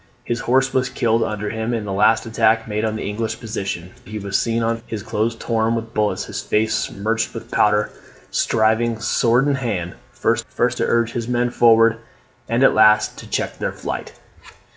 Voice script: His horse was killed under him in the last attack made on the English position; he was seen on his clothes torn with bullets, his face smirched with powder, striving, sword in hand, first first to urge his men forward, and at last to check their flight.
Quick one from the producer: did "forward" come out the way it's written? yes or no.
yes